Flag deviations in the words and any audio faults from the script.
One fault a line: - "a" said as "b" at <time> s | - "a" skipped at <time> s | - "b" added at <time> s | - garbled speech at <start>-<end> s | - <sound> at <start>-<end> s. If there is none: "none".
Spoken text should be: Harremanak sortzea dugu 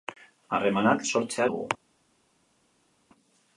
none